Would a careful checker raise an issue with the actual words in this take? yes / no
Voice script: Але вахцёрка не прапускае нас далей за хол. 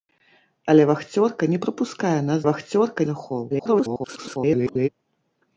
yes